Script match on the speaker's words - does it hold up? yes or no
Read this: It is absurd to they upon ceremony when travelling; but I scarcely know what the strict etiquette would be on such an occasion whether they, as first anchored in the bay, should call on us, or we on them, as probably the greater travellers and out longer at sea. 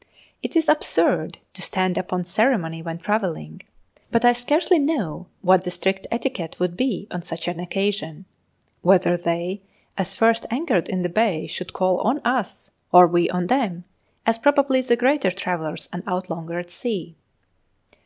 no